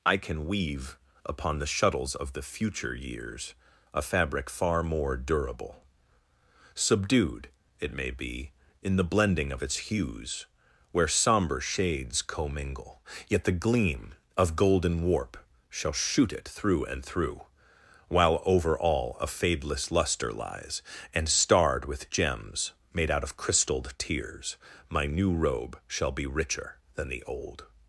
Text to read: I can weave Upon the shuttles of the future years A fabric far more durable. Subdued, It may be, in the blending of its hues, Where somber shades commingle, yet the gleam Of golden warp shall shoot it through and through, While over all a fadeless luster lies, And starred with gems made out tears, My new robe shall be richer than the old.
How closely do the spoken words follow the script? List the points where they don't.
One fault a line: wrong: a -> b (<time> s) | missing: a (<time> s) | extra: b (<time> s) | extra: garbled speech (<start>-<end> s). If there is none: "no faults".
extra: of crystalled (23.2 s)